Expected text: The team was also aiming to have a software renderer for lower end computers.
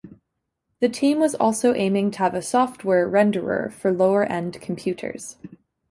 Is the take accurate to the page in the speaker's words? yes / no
yes